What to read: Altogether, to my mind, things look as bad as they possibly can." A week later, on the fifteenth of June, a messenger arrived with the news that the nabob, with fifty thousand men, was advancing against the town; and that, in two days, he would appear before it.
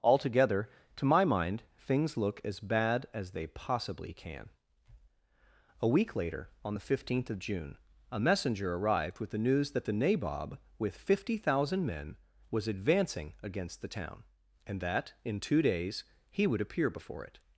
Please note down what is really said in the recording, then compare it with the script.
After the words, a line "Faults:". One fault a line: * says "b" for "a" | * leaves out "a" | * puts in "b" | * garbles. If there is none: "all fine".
Altogether, to my mind, things look as bad as they possibly can." A week later, on the fifteenth of June, a messenger arrived with the news that the nabob, with fifty thousand men, was advancing against the town; and that, in two days, he would appear before it.
Faults:
all fine